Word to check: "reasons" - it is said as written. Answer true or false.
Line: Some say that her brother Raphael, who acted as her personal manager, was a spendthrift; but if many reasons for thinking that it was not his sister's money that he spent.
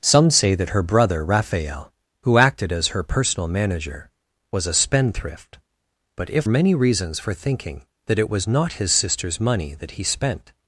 true